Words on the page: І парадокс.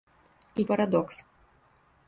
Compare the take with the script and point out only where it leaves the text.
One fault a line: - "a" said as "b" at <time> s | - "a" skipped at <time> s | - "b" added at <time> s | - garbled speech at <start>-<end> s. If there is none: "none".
none